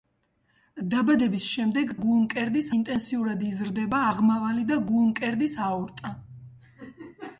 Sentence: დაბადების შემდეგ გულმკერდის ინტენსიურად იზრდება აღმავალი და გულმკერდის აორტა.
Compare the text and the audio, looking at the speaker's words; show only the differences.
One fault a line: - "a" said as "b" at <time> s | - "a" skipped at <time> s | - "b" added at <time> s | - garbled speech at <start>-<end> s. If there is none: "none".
none